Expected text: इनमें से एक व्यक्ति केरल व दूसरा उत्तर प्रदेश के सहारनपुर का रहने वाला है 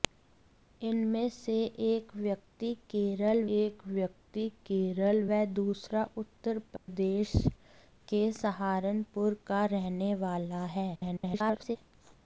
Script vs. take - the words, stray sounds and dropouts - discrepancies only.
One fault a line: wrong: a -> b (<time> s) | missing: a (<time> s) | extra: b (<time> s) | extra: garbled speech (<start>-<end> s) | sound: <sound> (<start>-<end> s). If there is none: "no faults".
extra: एक व्यक्ति केरल (3.6 s)
sound: dropout (6.8-6.9 s)
extra: garbled speech (10.9-11.8 s)